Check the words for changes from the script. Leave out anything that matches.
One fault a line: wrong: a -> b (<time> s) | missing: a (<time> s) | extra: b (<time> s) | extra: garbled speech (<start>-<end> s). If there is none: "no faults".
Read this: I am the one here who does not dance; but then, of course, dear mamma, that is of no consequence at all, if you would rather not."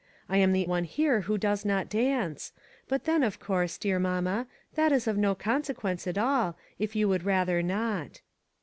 no faults